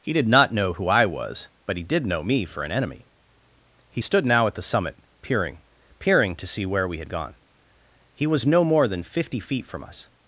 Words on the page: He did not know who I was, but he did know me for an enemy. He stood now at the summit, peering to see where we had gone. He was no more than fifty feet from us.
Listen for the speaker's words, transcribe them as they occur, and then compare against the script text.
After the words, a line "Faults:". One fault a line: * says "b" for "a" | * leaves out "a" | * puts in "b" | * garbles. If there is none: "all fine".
He did not know who I was, but he did know me for an enemy. He stood now at the summit, peering peering to see where we had gone. He was no more than fifty feet from us.
Faults:
* puts in "peering"